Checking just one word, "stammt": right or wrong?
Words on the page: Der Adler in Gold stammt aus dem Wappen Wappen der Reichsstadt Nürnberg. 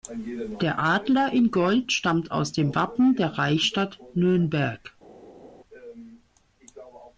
right